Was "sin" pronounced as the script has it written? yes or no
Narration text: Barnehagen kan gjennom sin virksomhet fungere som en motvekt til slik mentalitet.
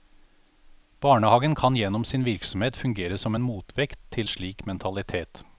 yes